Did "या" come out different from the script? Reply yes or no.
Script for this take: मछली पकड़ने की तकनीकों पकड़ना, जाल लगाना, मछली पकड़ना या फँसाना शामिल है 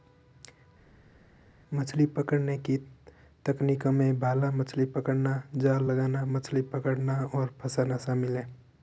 yes